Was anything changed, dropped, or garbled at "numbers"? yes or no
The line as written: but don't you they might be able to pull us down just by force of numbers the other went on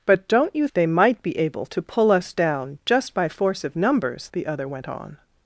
no